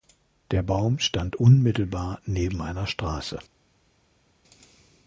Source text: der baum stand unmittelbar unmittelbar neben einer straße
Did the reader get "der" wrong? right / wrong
right